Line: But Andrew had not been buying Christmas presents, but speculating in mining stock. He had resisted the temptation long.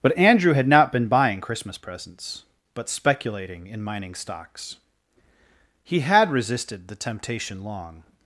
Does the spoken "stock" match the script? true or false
false